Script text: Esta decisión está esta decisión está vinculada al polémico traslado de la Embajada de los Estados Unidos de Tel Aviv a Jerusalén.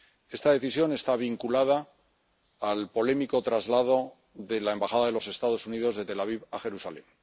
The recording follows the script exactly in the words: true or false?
false